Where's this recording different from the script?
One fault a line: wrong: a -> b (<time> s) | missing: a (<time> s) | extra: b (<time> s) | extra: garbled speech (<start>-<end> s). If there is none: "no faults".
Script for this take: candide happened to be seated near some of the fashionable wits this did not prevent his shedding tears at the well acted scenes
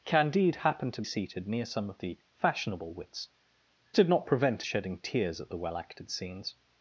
missing: be (1.0 s)
missing: this (3.3 s)
missing: his (4.6 s)